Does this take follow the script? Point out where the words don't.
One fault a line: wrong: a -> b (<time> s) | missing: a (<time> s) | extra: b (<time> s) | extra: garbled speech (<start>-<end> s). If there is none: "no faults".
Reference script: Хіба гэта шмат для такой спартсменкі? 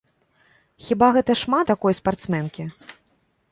missing: для (1.7 s)